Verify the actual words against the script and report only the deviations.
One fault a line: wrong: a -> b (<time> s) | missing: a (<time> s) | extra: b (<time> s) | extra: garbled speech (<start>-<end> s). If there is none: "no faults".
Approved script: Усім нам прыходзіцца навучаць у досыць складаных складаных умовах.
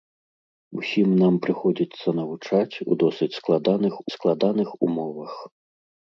no faults